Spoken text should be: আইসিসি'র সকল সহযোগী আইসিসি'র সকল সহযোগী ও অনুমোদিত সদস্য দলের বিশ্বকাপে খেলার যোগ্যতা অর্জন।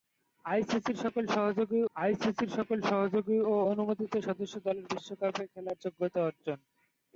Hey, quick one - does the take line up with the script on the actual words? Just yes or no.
yes